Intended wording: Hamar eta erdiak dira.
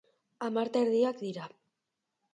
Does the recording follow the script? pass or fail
pass